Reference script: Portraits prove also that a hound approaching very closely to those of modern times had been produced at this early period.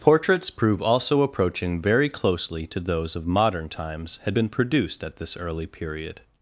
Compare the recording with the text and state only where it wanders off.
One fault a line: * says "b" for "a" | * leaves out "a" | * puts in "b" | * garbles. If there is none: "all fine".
* leaves out "that a hound"